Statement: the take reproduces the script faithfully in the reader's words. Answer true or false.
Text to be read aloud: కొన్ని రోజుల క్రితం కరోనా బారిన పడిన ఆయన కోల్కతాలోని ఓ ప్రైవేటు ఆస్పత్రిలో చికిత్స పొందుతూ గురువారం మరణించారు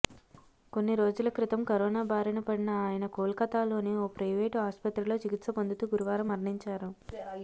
true